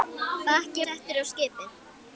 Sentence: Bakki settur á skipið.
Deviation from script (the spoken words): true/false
false